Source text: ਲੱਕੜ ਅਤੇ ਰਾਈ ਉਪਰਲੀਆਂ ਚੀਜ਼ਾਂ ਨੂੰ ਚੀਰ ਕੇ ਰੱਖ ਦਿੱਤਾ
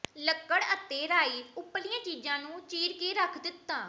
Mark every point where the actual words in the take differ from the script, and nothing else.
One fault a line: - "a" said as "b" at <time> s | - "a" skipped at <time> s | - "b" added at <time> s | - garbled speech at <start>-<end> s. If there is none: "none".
none